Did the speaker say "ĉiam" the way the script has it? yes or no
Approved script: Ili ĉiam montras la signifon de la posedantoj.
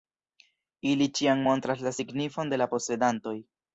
yes